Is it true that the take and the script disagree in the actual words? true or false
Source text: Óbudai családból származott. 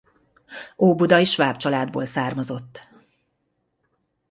true